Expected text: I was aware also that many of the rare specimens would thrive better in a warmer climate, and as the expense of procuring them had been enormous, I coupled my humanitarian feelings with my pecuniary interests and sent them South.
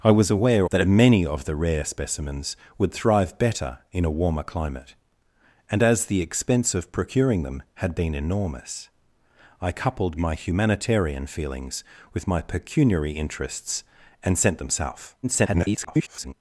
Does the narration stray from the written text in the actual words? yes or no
yes